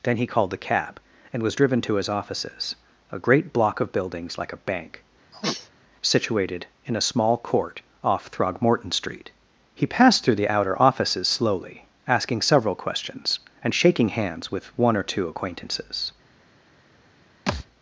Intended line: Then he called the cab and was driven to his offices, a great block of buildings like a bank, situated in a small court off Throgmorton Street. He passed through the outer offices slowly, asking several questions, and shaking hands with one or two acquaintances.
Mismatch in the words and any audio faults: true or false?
true